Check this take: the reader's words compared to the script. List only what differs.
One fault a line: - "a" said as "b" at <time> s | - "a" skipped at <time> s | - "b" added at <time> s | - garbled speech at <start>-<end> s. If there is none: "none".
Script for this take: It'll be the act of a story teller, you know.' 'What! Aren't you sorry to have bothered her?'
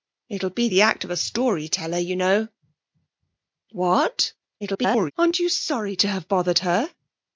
- garbled speech at 4.6-5.1 s